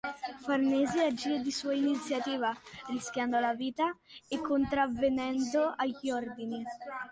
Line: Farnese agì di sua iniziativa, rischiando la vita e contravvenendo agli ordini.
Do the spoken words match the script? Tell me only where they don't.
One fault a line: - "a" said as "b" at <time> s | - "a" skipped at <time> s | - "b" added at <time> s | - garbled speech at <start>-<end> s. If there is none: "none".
none